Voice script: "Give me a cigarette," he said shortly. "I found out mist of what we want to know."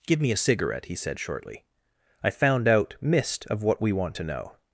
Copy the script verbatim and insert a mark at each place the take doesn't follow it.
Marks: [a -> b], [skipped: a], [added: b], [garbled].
"Give me a cigarette," he said shortly. "I found out mist of what we want to know."